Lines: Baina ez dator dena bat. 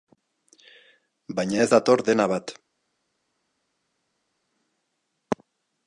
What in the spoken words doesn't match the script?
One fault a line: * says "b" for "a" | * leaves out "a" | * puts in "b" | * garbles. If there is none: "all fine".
all fine